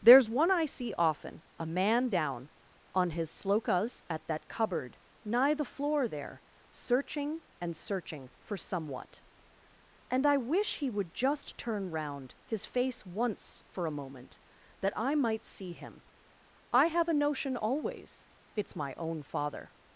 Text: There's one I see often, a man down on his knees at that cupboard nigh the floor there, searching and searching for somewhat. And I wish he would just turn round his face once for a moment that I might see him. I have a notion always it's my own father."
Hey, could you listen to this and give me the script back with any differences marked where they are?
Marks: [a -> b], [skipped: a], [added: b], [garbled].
There's one I see often, a man down on his [knees -> slokas] at that cupboard nigh the floor there, searching and searching for somewhat. And I wish he would just turn round his face once for a moment that I might see him. I have a notion always it's my own father."